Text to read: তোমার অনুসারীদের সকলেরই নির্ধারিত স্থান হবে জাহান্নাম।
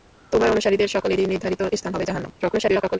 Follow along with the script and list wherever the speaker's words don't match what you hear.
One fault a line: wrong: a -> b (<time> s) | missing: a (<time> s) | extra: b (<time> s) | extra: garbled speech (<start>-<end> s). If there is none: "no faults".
extra: garbled speech (2.4-3.0 s)